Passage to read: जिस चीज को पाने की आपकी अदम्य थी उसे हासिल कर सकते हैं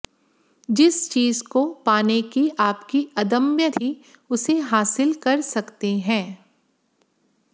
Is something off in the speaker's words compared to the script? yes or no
no